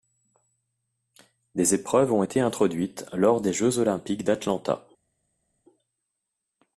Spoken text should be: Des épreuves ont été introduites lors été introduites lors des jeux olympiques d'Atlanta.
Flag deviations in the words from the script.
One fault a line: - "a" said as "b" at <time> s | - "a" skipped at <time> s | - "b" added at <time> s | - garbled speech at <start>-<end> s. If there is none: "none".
- "été introduites lors" skipped at 3.4 s